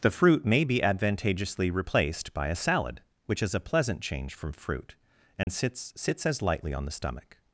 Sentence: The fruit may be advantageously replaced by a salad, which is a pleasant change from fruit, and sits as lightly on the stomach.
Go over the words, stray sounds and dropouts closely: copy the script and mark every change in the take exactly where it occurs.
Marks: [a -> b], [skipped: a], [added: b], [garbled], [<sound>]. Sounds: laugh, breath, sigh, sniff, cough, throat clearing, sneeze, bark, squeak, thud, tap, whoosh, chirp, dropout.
The fruit may be advantageously replaced by a salad, which is a pleasant change from fruit, and [dropout] sits [added: sits] as lightly on the stomach.